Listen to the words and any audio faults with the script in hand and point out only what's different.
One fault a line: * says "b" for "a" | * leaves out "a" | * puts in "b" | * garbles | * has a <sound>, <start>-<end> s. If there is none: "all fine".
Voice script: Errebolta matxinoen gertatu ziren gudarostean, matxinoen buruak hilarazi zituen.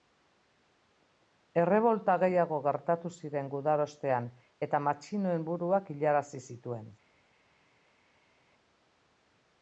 * says "gehiago" for "matxinoen"
* puts in "eta"